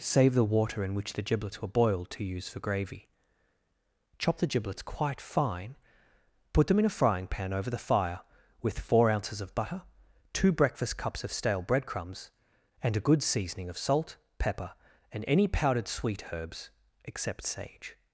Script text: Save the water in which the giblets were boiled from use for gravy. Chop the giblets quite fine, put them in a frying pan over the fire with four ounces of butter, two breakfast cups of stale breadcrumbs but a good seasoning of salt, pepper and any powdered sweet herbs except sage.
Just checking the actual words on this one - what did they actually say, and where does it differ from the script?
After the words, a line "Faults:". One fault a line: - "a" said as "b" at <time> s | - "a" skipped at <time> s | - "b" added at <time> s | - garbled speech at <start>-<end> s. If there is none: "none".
Save the water in which the giblets were boiled to use for gravy. Chop the giblets quite fine, put them in a frying pan over the fire with four ounces of butter, two breakfast cups of stale breadcrumbs and a good seasoning of salt, pepper and any powdered sweet herbs except sage.
Faults:
- "from" said as "to" at 2.1 s
- "but" said as "and" at 12.8 s